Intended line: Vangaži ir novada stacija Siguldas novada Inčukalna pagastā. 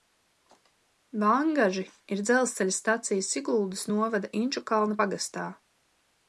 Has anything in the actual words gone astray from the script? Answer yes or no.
yes